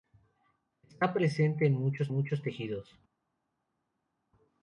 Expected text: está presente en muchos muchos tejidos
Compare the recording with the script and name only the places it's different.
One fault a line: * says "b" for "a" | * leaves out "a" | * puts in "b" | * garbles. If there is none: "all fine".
all fine